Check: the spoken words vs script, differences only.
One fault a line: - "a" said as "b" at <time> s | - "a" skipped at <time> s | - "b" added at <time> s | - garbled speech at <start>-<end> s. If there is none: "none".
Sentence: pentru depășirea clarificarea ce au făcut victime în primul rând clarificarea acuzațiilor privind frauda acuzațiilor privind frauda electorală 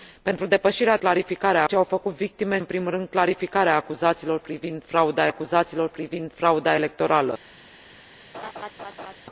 none